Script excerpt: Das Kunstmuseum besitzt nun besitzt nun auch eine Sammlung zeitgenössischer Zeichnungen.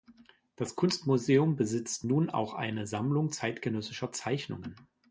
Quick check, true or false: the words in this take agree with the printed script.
false